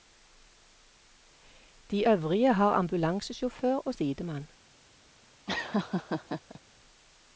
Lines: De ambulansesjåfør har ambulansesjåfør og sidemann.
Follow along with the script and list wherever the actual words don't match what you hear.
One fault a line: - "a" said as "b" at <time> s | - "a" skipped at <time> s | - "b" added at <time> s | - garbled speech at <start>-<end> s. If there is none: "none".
- "ambulansesjåfør" said as "øvrige" at 2.1 s